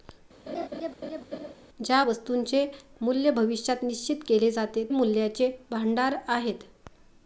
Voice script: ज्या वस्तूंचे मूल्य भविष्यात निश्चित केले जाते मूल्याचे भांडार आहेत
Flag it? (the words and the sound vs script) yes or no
yes